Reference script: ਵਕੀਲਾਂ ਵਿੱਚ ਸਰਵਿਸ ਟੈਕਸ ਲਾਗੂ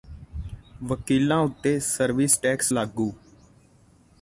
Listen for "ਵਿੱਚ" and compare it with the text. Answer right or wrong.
wrong